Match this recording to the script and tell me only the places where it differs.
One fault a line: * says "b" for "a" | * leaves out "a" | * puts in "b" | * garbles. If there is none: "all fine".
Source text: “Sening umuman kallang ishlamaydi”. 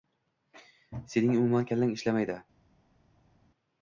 all fine